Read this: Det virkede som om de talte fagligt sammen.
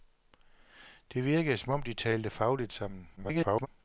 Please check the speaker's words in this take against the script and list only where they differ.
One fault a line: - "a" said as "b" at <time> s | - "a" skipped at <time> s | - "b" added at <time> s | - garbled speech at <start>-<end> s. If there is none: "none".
- garbled speech at 3.2-3.7 s